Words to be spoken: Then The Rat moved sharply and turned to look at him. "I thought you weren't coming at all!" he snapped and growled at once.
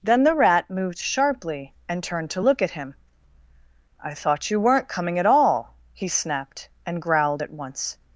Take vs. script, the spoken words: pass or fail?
pass